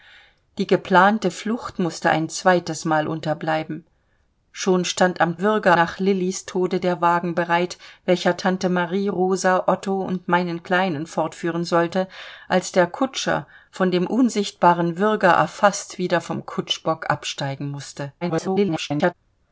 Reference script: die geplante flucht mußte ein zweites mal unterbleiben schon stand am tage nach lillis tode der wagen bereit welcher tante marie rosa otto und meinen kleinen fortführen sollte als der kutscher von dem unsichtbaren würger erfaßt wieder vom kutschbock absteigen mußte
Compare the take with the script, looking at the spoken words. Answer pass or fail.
fail